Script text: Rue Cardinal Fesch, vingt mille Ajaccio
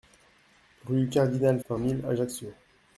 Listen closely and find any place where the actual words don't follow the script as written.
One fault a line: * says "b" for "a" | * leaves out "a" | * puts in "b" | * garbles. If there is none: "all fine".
* leaves out "Fesch"